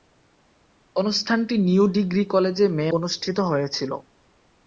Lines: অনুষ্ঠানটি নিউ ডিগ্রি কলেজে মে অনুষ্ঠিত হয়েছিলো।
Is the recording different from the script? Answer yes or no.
no